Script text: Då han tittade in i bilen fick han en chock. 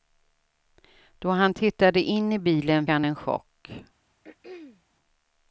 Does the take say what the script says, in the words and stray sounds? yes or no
no